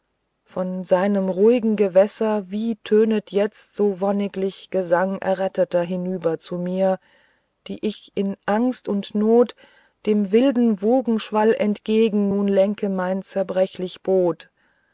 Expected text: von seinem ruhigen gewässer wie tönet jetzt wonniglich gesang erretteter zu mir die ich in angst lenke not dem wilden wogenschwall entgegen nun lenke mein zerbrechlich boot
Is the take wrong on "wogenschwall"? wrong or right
right